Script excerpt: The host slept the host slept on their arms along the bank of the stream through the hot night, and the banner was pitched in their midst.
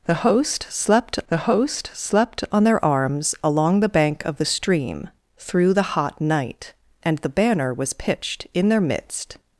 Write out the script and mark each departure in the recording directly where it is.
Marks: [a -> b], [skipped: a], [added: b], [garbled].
The host slept the host slept on their arms along the bank of the stream through the hot night, and the banner was pitched in their midst.